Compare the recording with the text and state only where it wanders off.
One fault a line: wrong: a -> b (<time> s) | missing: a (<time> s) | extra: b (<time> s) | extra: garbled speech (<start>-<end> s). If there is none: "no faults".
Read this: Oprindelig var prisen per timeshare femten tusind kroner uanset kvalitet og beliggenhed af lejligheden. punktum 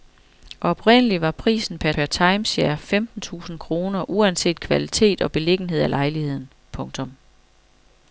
extra: per (1.9 s)